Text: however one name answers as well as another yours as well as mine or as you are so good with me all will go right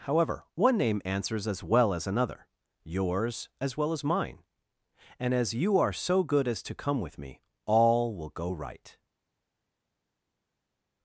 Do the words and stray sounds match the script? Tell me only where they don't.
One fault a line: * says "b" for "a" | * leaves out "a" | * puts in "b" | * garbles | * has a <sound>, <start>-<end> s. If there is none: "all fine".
* says "and" for "or"
* puts in "as to come"